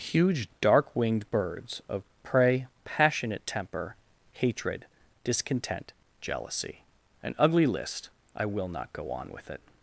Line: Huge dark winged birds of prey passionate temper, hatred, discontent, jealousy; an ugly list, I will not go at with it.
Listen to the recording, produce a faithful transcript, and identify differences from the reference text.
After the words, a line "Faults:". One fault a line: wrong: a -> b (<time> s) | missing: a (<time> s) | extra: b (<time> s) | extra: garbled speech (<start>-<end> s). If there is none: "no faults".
Huge dark winged birds of prey passionate temper, hatred, discontent, jealousy; an ugly list, I will not go on with it.
Faults:
wrong: at -> on (9.1 s)